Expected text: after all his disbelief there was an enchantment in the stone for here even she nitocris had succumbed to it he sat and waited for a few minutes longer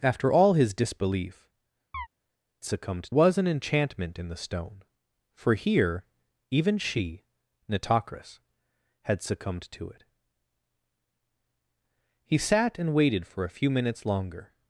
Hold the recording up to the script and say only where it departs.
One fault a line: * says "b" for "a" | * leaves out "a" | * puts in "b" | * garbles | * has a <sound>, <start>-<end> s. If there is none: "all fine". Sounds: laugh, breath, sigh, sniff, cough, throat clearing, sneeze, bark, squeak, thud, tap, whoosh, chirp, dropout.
* has a chirp, 1.9-2.1 s
* says "succumbed" for "there"